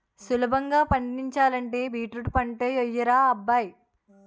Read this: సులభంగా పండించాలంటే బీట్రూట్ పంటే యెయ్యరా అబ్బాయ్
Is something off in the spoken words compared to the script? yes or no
no